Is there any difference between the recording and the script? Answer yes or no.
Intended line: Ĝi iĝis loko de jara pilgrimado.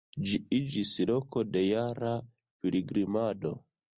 no